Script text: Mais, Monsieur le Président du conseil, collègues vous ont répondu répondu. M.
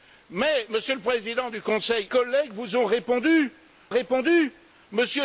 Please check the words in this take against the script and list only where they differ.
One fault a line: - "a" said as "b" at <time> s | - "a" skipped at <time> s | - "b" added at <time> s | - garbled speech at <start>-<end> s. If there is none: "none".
none